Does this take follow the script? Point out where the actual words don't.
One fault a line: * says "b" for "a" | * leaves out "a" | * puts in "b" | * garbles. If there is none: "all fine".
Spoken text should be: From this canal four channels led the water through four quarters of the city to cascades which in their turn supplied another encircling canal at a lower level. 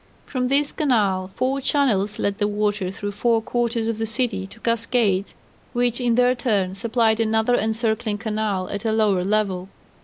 all fine